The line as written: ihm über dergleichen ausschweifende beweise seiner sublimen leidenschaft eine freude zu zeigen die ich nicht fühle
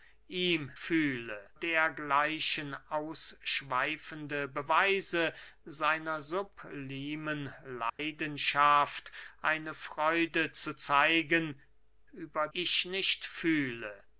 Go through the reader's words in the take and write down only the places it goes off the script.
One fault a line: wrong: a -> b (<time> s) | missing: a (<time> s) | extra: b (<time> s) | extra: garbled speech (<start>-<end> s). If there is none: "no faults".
wrong: über -> fühle (0.7 s)
wrong: die -> über (12.1 s)